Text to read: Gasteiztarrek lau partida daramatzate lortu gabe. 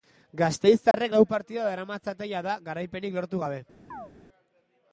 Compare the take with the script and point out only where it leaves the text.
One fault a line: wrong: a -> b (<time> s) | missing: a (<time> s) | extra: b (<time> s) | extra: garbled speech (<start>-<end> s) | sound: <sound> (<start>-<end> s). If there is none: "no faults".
sound: dropout (0.9-0.9 s)
extra: jada garaipenik (2.3 s)
sound: chirp (3.9-4.1 s)